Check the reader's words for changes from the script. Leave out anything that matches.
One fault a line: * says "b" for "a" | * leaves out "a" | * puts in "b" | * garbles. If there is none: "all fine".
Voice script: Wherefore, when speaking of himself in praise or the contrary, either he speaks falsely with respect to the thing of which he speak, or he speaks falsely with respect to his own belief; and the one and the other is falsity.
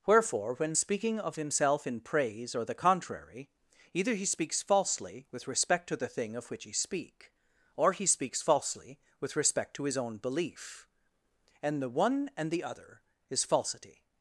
all fine